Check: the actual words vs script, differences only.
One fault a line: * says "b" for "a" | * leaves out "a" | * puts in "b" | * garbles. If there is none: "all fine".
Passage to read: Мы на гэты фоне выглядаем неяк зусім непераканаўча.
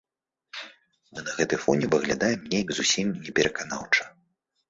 all fine